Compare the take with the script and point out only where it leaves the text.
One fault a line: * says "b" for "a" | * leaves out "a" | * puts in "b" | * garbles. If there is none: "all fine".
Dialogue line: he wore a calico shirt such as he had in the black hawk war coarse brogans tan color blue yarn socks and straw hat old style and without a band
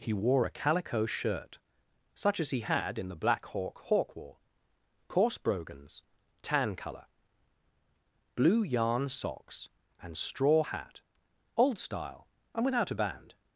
* puts in "hawk"